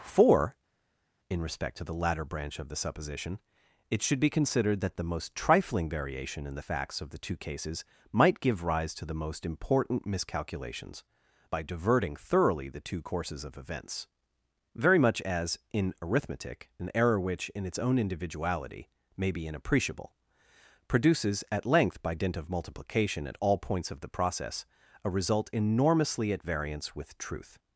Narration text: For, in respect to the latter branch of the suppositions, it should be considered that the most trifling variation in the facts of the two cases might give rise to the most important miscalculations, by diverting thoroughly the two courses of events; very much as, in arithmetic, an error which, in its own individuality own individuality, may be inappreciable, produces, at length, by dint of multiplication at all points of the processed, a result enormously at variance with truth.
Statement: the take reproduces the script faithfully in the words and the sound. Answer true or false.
false